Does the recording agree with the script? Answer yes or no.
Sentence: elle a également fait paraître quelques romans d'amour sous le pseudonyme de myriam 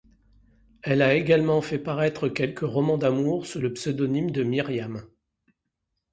yes